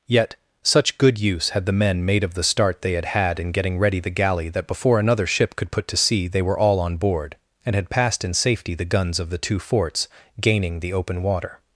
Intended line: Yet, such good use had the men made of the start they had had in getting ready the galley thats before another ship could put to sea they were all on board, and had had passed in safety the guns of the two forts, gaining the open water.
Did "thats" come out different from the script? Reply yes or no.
yes